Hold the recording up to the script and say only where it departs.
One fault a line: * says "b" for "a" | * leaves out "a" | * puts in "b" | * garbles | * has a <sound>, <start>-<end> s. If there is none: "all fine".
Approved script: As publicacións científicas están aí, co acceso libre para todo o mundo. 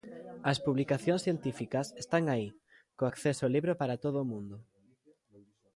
all fine